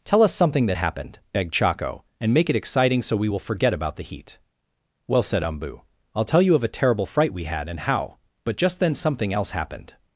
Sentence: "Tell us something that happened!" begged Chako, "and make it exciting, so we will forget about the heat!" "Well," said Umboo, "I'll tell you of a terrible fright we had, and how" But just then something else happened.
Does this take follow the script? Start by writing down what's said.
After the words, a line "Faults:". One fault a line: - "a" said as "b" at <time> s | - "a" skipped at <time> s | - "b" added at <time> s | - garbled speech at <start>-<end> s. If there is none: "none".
"Tell us something that happened!" begged Chako, "and make it exciting, so we will forget about the heat!" "Well," said Umboo, "I'll tell you of a terrible fright we had, and how" But just then something else happened.
Faults:
none